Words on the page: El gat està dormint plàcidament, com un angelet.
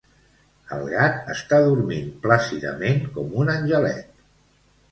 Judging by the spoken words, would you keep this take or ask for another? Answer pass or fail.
pass